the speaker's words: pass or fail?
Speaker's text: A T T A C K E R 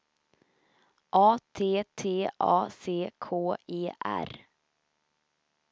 pass